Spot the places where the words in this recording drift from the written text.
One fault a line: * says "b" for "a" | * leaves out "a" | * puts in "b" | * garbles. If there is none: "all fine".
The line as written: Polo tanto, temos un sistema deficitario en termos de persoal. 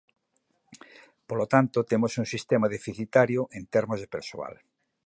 all fine